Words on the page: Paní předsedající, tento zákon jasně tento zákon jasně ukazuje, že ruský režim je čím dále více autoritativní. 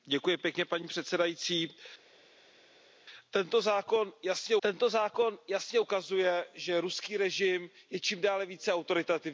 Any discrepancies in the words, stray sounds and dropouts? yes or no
no